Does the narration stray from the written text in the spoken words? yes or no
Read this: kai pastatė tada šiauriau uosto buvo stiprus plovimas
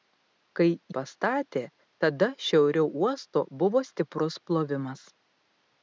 no